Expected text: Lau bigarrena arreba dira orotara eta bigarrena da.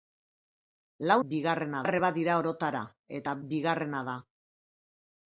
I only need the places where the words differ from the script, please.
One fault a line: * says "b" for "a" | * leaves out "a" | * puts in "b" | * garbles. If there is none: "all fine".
all fine